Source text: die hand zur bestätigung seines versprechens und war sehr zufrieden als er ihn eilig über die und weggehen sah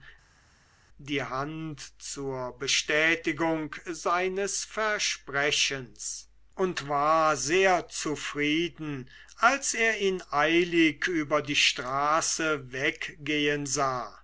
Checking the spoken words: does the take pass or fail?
fail